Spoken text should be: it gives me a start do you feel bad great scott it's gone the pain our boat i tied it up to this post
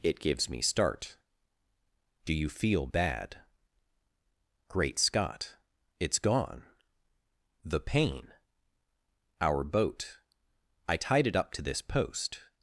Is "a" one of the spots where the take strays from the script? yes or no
yes